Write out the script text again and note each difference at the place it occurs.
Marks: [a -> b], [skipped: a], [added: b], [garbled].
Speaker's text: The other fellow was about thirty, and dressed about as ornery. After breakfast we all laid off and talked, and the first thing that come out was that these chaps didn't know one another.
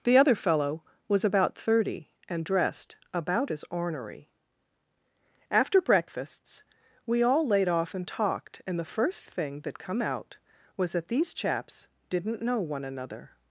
The other fellow was about thirty, and dressed about as ornery. After [breakfast -> breakfasts] we all laid off and talked, and the first thing that come out was that these chaps didn't know one another.